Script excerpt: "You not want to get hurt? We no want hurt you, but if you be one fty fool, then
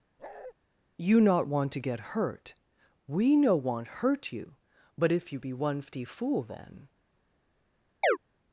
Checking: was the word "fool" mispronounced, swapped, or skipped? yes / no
no